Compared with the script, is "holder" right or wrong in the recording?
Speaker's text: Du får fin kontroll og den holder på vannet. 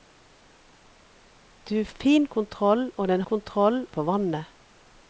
wrong